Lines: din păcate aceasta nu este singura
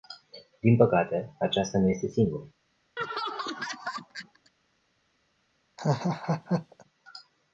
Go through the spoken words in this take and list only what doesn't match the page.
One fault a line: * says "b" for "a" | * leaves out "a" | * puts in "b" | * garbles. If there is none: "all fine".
all fine